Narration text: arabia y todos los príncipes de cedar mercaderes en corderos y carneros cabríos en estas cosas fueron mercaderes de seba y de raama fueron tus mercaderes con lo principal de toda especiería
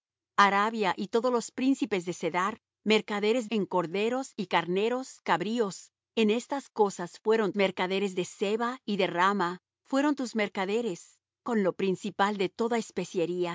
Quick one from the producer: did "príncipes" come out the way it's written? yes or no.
yes